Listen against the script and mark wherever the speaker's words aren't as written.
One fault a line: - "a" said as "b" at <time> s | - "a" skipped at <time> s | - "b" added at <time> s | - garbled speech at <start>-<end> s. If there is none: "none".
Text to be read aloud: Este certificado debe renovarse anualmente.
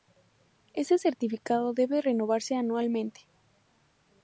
none